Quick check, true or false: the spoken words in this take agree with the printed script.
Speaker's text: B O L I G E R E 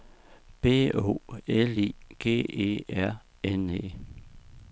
false